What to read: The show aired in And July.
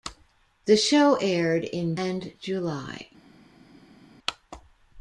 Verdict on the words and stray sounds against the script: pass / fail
pass